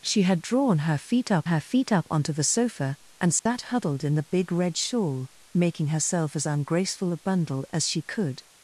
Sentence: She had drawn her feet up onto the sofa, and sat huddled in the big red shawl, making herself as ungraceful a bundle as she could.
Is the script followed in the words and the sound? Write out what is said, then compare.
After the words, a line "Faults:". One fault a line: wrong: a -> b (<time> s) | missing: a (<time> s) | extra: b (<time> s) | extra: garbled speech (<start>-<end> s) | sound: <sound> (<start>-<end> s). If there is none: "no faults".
She had drawn her feet up her feet up onto the sofa, and sat huddled in the big red shawl, making herself as ungraceful a bundle as she could.
Faults:
extra: her feet up (1.4 s)
sound: dropout (3.4-3.5 s)